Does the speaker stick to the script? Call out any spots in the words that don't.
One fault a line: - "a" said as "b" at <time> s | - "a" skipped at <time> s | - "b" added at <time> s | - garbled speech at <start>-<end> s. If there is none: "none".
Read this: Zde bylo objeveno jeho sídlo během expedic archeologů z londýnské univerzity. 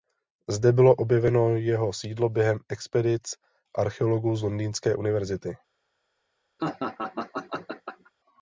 none